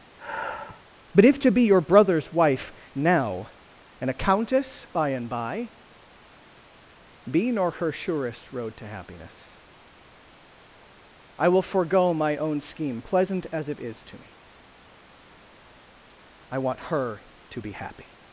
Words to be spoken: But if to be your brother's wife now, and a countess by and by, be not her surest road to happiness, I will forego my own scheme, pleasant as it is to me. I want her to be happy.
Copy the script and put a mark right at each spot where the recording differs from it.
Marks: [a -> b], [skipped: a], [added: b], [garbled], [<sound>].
[sigh] But if to be your brother's wife now, and a countess by and by, be [not -> nor] her surest road to happiness, I will forego my own scheme, pleasant as it is to me. I want her to be happy.